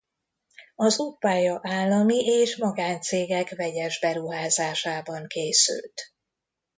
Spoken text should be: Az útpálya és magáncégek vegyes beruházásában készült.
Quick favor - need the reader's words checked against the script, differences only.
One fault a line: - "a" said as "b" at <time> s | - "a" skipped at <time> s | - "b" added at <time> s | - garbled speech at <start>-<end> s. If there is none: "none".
- "állami" added at 1.6 s